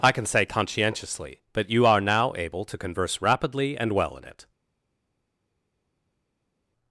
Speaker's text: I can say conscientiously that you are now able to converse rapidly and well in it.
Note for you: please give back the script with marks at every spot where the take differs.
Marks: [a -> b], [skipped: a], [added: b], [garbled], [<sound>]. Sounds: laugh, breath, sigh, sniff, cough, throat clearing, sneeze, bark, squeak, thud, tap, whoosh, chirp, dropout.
I can say conscientiously [that -> but] you are now able to converse rapidly and well in it.